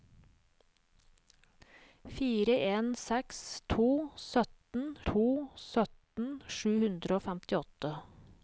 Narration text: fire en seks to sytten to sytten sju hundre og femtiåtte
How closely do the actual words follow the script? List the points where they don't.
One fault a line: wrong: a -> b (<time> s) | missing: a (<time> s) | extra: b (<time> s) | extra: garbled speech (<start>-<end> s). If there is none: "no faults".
no faults